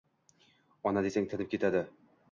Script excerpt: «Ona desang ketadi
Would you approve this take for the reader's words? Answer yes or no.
no